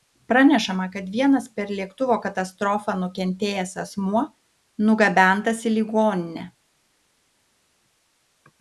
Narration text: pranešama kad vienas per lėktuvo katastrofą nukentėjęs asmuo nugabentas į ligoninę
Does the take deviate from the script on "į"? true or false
false